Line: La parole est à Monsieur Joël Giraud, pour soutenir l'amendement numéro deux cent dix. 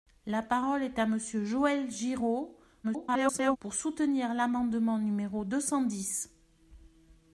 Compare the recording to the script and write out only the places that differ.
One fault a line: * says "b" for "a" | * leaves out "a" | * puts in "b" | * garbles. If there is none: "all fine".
* garbles